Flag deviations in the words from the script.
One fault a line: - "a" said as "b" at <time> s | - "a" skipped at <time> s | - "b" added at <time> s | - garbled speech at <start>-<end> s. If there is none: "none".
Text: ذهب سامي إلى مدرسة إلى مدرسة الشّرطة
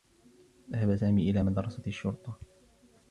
- "إلى مدرسة" skipped at 1.8 s